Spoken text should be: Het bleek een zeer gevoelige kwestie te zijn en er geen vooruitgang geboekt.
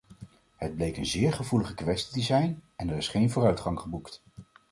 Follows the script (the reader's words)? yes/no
no